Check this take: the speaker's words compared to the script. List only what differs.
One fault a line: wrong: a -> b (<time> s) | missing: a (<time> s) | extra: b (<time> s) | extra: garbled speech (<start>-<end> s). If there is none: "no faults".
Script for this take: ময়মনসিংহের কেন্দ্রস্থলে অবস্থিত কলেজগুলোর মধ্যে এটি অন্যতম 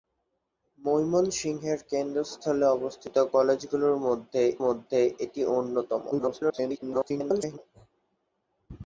extra: মধ্যে (4.7 s)
extra: garbled speech (6.1-7.6 s)